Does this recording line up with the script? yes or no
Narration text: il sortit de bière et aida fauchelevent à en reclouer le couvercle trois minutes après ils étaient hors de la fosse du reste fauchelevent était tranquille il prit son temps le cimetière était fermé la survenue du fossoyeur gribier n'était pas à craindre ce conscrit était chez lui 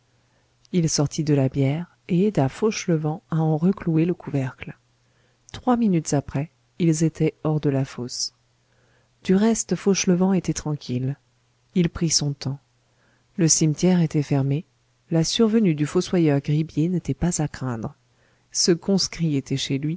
no